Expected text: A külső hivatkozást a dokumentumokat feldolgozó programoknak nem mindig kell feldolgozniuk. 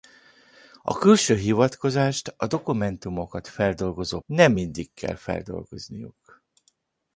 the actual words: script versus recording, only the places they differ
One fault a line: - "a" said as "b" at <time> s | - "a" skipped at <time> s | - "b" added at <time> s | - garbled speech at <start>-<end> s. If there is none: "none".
- "programoknak" skipped at 4.2 s